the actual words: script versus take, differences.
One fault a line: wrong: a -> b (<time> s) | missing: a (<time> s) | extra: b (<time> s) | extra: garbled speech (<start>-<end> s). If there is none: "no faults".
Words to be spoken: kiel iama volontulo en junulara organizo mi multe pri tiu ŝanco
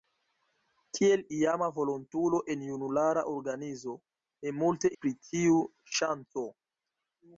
no faults